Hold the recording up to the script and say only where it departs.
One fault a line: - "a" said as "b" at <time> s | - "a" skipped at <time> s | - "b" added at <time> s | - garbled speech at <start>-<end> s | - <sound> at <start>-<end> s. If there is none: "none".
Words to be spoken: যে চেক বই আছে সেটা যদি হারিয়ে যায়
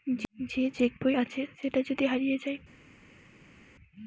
none